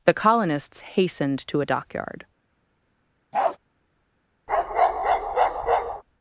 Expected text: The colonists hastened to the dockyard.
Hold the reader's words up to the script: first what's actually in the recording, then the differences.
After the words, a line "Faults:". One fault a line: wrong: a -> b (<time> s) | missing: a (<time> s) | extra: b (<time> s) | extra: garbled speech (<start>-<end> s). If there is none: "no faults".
The colonists hastened to a dockyard.
Faults:
wrong: the -> a (1.6 s)